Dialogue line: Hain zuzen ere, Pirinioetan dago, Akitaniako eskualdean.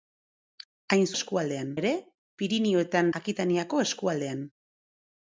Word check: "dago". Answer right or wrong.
wrong